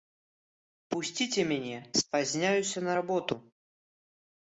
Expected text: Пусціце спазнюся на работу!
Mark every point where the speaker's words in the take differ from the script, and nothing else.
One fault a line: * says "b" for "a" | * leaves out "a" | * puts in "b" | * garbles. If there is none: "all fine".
* puts in "мяне"